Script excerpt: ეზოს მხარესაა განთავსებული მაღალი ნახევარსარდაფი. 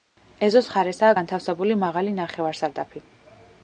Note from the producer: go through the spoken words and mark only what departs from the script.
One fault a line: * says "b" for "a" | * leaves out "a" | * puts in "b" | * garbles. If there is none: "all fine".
all fine